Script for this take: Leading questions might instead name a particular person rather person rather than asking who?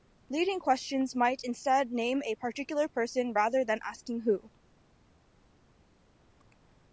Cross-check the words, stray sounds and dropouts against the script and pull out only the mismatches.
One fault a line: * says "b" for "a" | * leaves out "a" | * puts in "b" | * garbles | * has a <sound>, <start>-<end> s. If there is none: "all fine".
* leaves out "person rather"